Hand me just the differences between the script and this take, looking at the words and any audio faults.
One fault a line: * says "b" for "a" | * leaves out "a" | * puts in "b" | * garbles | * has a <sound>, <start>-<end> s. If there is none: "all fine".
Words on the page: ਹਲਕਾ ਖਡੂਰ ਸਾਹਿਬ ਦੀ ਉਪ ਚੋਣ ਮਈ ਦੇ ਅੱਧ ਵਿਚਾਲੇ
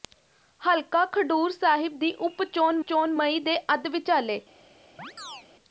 * puts in "ਚੋਣ"
* has a chirp, 5.0-5.5 s